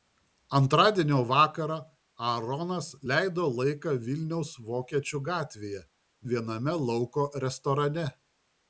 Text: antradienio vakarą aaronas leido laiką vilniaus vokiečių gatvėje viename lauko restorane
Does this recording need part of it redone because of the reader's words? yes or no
no